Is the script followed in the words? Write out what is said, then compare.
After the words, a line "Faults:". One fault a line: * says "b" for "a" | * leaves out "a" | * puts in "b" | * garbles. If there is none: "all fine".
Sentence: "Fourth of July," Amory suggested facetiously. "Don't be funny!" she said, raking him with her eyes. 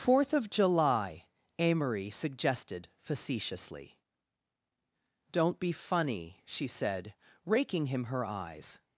"Fourth of July," Amory suggested facetiously. "Don't be funny!" she said, raking him her eyes.
Faults:
* leaves out "with"